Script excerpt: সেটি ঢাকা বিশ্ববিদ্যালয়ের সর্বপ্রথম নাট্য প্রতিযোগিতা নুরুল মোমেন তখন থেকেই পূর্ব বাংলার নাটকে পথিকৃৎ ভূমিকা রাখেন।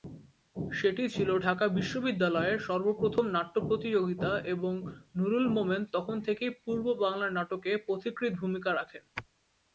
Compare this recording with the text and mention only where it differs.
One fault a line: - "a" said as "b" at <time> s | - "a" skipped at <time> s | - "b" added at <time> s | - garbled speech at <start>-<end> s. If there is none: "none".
- "ছিল" added at 1.1 s
- "এবং" added at 4.5 s